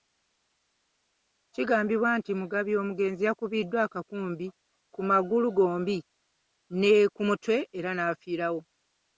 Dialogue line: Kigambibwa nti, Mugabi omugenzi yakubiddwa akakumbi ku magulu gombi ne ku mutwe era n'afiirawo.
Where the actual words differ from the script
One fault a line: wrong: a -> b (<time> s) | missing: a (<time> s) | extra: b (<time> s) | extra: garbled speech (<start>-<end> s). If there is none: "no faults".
no faults